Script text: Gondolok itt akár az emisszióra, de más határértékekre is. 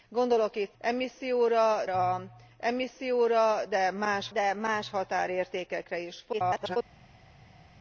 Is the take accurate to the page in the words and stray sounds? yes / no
no